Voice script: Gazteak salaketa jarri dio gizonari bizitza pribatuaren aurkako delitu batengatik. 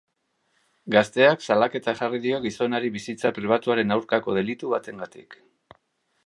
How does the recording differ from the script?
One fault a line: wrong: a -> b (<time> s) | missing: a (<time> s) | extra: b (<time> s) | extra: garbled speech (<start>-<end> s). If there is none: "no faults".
no faults